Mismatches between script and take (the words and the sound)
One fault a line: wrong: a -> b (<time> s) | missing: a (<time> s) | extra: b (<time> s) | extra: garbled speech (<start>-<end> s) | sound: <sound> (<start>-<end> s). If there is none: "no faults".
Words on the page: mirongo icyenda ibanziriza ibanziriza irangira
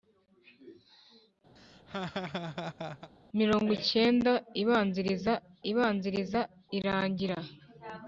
sound: laugh (1.6-3.1 s)